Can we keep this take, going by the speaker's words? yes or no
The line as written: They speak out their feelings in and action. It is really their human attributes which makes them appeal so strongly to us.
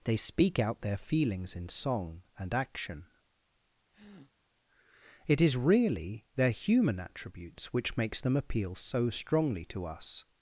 no